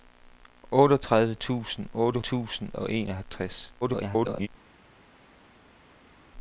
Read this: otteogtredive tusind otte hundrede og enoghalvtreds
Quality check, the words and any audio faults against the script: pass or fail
fail